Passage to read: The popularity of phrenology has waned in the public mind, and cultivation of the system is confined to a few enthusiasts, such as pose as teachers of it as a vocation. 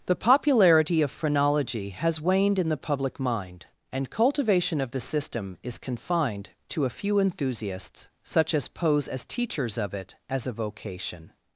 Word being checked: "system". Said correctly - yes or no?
yes